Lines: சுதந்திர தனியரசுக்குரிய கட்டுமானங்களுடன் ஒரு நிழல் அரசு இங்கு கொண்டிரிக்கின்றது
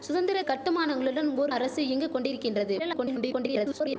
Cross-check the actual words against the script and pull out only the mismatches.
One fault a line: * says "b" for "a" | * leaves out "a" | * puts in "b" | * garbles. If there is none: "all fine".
* leaves out "தனியரசுக்குரிய"
* leaves out "நிழல்"
* garbles